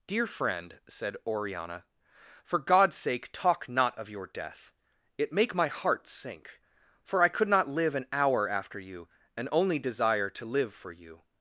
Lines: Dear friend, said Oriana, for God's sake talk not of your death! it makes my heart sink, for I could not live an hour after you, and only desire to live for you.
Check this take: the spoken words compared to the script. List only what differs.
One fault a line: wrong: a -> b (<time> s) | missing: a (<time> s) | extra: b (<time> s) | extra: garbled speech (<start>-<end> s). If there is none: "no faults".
wrong: makes -> make (5.3 s)